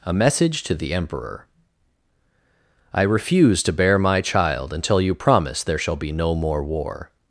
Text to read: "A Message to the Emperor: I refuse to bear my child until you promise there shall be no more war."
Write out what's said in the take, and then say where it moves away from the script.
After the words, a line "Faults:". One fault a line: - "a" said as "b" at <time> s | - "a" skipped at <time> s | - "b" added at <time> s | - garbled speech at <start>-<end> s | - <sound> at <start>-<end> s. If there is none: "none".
"A Message to the Emperor: I refuse to bear my child until you promise there shall be no more war."
Faults:
none